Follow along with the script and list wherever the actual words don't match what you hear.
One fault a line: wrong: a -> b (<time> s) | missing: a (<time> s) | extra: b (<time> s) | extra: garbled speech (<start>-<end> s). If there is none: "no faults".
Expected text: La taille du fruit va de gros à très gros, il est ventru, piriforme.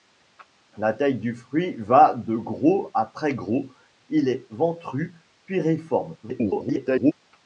extra: garbled speech (6.2-7.1 s)